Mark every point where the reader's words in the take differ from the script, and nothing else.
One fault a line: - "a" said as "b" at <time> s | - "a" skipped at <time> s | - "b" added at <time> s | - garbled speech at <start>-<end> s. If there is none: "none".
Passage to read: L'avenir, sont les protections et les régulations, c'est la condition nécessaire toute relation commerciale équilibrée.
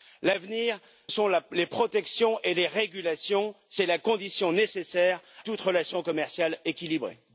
none